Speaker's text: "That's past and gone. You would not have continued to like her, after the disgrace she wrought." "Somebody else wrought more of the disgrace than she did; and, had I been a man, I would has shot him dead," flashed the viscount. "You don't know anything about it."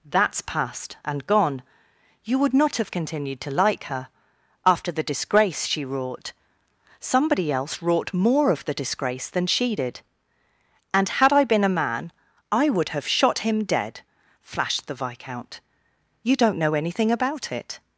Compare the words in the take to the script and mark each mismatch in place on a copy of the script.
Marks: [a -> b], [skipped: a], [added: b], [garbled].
"That's past and gone. You would not have continued to like her, after the disgrace she wrought." "Somebody else wrought more of the disgrace than she did; and, had I been a man, I would [has -> have] shot him dead," flashed the viscount. "You don't know anything about it."